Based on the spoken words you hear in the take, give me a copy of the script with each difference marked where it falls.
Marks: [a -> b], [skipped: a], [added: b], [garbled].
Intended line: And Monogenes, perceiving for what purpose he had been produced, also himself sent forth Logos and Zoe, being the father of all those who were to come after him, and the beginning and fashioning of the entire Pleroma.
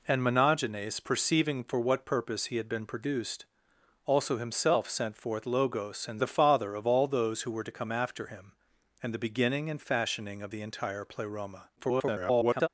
And Monogenes, perceiving for what purpose he had been produced, also himself sent forth Logos and [skipped: Zoe, being] the father of all those who were to come after him, and the beginning and fashioning of the entire Pleroma. [garbled]